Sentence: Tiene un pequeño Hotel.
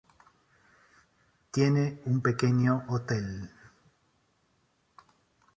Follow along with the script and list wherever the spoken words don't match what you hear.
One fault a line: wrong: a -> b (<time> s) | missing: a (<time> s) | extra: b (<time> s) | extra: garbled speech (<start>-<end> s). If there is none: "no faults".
no faults